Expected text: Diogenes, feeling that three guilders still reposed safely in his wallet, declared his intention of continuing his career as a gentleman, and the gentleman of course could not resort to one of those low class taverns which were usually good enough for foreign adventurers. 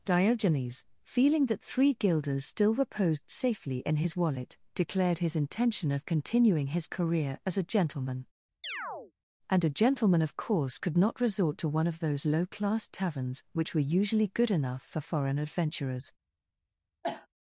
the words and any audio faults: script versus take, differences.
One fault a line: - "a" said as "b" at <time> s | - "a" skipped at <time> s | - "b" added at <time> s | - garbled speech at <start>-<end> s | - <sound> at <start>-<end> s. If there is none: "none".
- chirp at 8.6-9.1 s
- "the" said as "a" at 9.6 s
- cough at 17.0-17.3 s